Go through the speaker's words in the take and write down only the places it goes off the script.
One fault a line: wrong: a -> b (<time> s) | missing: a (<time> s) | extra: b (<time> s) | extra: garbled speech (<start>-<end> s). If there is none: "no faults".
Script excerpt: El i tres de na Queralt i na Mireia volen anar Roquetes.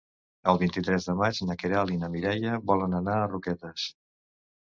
extra: vint (0.6 s)
extra: maig (1.2 s)
extra: a (3.2 s)